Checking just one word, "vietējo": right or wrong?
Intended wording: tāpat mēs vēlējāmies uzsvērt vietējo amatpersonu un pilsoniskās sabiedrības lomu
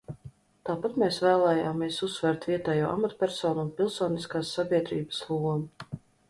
right